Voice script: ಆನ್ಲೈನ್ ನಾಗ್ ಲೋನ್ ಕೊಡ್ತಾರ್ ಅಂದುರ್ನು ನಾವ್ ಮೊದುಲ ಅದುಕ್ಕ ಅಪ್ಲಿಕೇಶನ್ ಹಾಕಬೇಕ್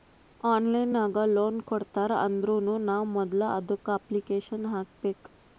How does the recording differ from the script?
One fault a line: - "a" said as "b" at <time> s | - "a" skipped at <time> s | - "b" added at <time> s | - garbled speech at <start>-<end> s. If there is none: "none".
none